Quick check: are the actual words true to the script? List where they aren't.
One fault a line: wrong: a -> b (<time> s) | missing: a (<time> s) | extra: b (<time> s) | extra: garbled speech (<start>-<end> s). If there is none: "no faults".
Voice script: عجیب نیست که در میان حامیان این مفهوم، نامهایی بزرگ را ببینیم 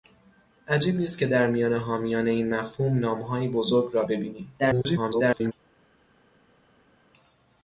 extra: garbled speech (4.6-5.5 s)